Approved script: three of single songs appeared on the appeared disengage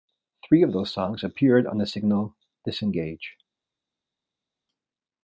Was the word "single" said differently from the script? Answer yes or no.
yes